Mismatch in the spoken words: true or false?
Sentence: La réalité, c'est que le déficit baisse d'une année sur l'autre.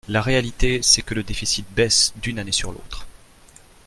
false